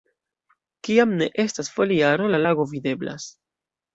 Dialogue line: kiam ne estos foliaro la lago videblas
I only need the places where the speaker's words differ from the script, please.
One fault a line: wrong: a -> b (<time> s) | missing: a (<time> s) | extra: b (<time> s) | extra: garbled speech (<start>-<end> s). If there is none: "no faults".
wrong: estos -> estas (1.4 s)